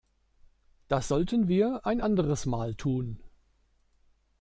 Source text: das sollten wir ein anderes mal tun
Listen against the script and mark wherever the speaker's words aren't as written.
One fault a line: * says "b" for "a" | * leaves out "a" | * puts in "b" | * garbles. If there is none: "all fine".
all fine